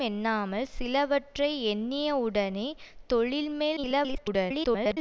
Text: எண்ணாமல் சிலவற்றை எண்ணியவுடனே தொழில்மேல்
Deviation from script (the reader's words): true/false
true